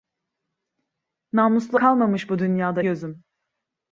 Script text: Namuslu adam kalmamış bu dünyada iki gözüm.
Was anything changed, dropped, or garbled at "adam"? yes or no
yes